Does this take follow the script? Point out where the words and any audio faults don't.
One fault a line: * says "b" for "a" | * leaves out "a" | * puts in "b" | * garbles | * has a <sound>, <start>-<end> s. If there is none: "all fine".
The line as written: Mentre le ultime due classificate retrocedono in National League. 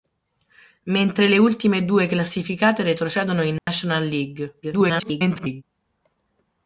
* has a dropout, 3.6-3.7 s
* garbles